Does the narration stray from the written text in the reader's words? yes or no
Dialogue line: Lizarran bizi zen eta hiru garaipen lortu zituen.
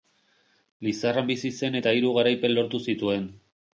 no